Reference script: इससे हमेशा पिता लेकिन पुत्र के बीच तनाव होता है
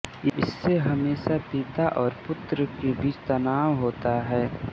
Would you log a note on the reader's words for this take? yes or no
yes